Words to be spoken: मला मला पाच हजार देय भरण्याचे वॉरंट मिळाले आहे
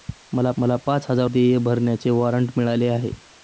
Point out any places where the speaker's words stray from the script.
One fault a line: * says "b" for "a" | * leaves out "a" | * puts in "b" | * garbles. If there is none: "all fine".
all fine